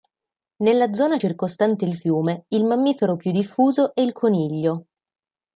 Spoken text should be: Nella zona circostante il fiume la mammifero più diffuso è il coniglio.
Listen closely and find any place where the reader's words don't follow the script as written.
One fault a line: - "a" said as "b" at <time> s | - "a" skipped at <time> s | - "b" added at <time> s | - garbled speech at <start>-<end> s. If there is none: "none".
- "la" said as "il" at 2.5 s